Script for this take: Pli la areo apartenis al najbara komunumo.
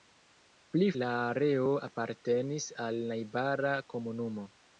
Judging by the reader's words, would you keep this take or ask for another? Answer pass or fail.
pass